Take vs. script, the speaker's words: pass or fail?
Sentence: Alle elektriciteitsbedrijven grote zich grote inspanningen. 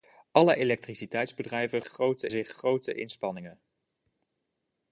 pass